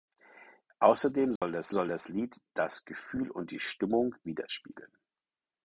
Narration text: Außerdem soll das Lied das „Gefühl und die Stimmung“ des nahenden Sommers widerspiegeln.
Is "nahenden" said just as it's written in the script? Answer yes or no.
no